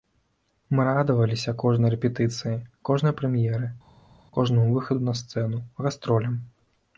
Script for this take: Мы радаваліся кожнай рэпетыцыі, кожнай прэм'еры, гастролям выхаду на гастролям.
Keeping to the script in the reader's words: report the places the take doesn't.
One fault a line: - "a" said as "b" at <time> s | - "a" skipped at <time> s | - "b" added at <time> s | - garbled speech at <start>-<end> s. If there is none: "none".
- "гастролям" said as "кожнаму" at 4.4 s
- "сцэну" added at 5.2 s